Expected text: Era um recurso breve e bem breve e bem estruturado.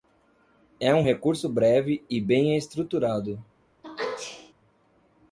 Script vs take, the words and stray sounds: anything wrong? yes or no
yes